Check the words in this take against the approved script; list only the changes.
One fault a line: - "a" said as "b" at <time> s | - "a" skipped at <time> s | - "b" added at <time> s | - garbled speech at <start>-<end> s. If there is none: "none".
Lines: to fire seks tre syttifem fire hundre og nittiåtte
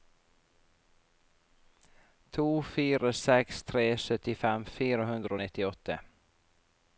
none